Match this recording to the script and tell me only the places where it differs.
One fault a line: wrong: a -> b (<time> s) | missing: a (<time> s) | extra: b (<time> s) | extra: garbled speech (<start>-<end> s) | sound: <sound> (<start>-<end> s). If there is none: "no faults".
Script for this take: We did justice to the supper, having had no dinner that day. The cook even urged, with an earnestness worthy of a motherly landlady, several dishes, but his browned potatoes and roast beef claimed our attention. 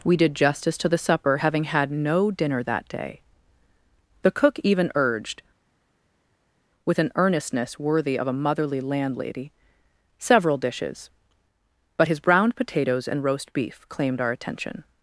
no faults